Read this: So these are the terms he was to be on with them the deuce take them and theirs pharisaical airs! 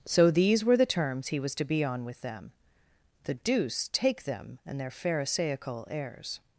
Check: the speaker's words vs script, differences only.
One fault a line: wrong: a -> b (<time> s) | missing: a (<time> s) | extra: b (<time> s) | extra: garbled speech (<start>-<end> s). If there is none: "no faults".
wrong: are -> were (0.7 s)
wrong: theirs -> their (4.8 s)